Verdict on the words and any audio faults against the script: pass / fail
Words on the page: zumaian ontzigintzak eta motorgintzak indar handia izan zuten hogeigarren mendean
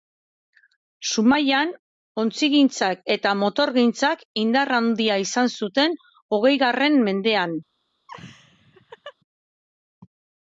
fail